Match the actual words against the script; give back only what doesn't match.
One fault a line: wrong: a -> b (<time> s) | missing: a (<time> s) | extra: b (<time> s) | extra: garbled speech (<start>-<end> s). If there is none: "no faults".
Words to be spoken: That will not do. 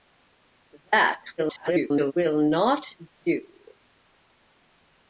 extra: garbled speech (1.4-2.1 s)